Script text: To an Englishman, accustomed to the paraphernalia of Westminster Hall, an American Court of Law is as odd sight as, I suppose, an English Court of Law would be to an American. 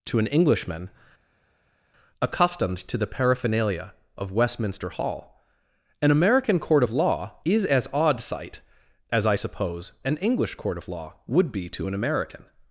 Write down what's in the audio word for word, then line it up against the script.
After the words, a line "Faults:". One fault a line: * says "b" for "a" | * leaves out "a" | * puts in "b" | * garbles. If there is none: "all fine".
To an Englishman, accustomed to the paraphernalia of Westminster Hall, an American Court of Law is as odd sight as, I suppose, an English Court of Law would be to an American.
Faults:
all fine